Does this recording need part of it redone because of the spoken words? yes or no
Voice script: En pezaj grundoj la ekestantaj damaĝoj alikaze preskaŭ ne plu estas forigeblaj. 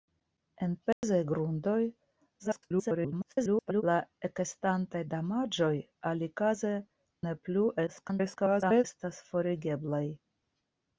yes